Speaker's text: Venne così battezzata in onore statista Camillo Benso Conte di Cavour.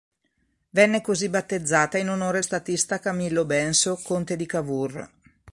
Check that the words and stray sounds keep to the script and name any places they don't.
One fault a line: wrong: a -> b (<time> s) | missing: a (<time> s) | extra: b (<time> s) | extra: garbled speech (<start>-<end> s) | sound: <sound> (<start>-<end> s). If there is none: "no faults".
no faults